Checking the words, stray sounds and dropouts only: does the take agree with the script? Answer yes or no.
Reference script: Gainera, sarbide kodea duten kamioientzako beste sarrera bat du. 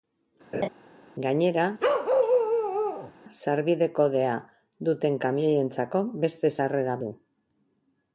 no